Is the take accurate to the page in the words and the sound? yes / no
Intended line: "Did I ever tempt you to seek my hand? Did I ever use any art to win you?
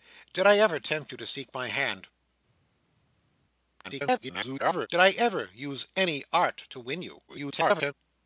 no